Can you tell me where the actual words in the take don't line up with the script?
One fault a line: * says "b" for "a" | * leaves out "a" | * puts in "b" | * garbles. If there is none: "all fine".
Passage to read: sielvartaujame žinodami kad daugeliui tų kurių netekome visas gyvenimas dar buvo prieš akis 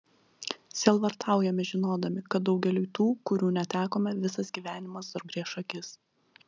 * leaves out "buvo"